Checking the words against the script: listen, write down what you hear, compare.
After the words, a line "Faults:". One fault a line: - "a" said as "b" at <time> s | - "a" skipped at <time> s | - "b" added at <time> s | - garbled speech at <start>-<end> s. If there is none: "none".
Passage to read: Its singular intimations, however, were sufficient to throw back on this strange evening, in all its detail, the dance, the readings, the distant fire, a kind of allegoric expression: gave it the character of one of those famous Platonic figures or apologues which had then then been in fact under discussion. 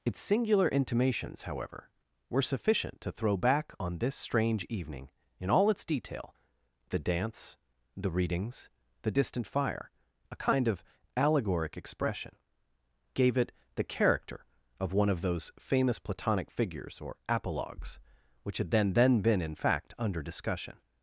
Its singular intimations, however, were sufficient to throw back on this strange evening, in all its detail, the dance, the readings, the distant fire, a kind of allegoric expression: gave it the character of one of those famous Platonic figures or apologues which had then then been in fact under discussion.
Faults:
none